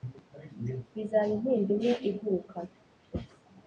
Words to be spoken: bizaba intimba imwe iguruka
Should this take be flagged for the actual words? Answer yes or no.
no